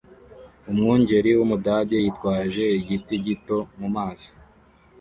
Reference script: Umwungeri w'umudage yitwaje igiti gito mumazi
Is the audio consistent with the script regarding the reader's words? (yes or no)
yes